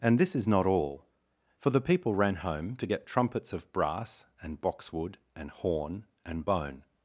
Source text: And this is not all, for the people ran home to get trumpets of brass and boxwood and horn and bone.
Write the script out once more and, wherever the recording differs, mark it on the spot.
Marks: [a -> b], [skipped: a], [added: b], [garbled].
And this is not all, for the people ran home to get trumpets of brass and boxwood and horn and bone.